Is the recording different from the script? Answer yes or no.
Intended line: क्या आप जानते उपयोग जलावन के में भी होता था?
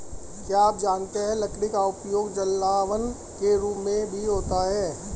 yes